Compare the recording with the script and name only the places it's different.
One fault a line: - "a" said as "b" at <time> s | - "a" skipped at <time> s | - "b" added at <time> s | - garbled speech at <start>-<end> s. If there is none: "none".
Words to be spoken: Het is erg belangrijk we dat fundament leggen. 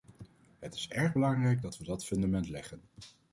- "dat" added at 1.6 s